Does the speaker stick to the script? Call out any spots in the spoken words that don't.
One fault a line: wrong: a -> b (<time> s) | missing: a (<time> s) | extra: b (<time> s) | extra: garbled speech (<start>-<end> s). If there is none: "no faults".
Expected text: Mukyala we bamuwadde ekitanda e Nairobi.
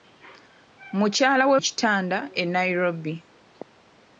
missing: bamuwadde (1.6 s)